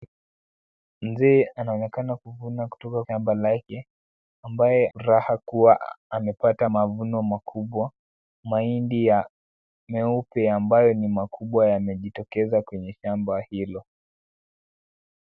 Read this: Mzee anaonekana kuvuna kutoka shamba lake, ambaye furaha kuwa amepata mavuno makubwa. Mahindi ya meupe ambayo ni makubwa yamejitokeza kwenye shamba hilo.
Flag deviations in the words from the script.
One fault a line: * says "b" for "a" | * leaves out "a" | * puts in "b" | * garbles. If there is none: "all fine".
all fine